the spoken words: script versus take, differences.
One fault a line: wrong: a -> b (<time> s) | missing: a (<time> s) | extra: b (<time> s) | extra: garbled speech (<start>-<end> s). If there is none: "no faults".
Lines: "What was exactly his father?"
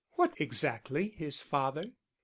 missing: was (0.3 s)